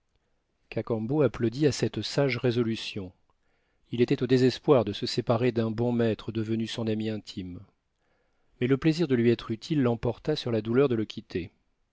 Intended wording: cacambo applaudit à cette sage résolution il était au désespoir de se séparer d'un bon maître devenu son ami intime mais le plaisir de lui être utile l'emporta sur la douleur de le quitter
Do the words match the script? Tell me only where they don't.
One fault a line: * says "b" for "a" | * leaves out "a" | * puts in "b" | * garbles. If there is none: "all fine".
all fine